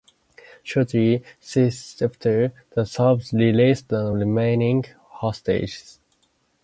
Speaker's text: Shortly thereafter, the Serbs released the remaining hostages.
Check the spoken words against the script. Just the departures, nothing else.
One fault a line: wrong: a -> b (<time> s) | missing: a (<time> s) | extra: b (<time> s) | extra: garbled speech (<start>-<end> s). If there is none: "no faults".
no faults